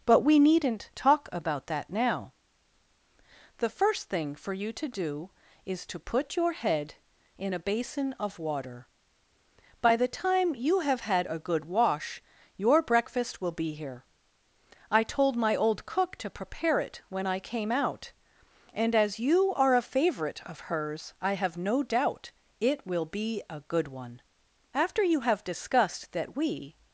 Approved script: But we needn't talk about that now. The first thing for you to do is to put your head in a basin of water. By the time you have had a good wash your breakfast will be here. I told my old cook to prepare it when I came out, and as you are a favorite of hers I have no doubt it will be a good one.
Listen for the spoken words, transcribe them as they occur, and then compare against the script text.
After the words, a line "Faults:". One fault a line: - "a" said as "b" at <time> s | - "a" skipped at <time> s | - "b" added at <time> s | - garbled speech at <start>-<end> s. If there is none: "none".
But we needn't talk about that now. The first thing for you to do is to put your head in a basin of water. By the time you have had a good wash your breakfast will be here. I told my old cook to prepare it when I came out, and as you are a favorite of hers I have no doubt it will be a good one. After you have discussed that we
Faults:
- "After you have discussed that we" added at 24.7 s